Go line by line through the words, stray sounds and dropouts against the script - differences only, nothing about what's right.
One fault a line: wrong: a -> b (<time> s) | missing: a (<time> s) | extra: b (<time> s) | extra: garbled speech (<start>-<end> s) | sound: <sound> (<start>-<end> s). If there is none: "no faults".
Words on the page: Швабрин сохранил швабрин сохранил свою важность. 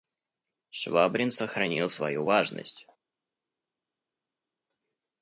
missing: швабрин сохранил (1.9 s)